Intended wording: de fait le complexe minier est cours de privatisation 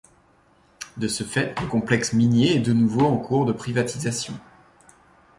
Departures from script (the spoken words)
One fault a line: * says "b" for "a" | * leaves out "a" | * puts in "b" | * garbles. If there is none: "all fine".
* puts in "ce"
* puts in "de nouveau en"